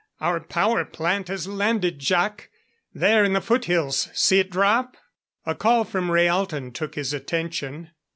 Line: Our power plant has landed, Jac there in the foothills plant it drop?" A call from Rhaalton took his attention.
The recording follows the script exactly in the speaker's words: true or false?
false